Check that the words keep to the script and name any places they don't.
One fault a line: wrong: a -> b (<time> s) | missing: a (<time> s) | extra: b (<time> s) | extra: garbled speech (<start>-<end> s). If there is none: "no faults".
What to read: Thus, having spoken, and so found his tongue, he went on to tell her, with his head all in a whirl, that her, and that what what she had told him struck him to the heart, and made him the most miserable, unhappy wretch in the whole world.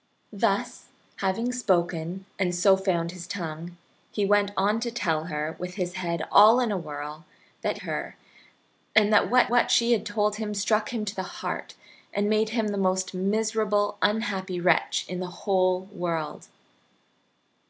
no faults